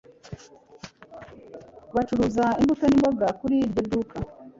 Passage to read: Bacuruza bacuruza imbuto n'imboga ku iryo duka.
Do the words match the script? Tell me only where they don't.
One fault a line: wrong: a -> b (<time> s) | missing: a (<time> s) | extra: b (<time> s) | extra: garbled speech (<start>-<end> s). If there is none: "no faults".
missing: bacuruza (2.5 s)
wrong: ku -> kuri (3.4 s)